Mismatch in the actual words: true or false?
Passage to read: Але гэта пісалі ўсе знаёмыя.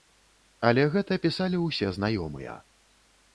false